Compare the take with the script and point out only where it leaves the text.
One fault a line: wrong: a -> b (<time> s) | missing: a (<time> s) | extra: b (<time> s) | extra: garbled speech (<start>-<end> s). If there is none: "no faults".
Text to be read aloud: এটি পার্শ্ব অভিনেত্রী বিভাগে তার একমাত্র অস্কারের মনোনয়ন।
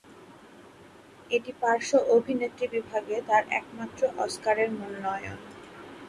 no faults